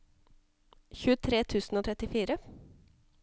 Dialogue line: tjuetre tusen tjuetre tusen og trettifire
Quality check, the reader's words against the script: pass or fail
fail